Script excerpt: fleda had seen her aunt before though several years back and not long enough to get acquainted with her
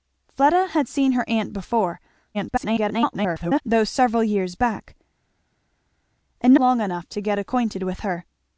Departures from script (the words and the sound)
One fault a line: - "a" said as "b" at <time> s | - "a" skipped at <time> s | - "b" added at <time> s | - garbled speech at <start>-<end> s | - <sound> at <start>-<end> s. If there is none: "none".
- garbled speech at 2.3-3.6 s
- "not" skipped at 6.5 s